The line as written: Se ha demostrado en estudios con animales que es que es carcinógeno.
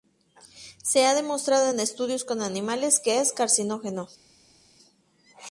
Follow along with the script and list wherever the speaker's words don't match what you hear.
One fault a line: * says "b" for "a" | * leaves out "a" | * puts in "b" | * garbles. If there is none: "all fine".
* leaves out "que es"